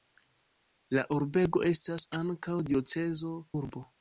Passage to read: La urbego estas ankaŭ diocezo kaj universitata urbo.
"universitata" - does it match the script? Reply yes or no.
no